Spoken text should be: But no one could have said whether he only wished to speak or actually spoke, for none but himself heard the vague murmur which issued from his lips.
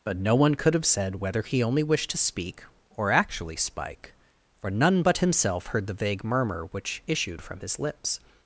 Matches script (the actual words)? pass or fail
fail